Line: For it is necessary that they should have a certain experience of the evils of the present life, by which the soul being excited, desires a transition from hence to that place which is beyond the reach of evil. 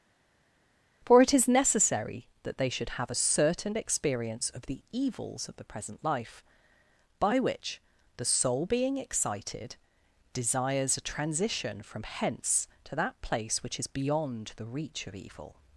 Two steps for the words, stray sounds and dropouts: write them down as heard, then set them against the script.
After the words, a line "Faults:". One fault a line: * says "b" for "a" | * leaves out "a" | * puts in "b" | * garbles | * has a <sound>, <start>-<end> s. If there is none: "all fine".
For it is necessary that they should have a certain experience of the evils of the present life, by which the soul being excited, desires a transition from hence to that place which is beyond the reach of evil.
Faults:
all fine